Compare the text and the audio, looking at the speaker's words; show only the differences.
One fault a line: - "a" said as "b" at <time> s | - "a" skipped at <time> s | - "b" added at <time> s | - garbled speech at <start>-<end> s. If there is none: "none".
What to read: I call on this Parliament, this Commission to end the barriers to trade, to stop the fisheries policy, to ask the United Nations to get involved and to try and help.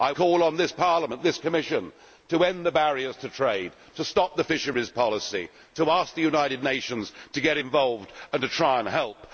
none